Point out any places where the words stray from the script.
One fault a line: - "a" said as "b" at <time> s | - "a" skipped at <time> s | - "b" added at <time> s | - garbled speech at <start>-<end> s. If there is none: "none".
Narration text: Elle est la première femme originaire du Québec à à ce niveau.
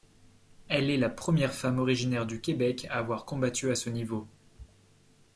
- "avoir combattu" added at 3.0 s